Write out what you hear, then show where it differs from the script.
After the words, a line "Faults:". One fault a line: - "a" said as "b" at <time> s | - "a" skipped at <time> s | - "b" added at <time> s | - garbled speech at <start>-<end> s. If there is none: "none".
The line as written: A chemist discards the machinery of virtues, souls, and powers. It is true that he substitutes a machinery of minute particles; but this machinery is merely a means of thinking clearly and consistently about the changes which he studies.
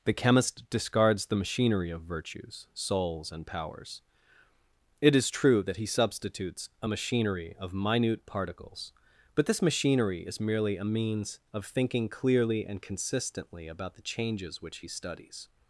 The chemist discards the machinery of virtues, souls, and powers. It is true that he substitutes a machinery of minute particles; but this machinery is merely a means of thinking clearly and consistently about the changes which he studies.
Faults:
- "A" said as "The" at 0.0 s